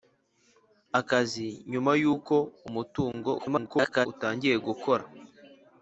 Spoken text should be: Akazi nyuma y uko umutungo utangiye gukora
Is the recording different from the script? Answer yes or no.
yes